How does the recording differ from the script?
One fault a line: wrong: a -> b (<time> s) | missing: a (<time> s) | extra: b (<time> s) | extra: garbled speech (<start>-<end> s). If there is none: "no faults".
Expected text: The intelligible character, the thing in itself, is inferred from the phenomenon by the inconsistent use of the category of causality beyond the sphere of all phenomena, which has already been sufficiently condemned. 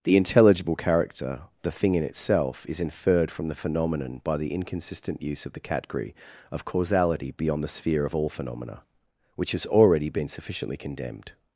no faults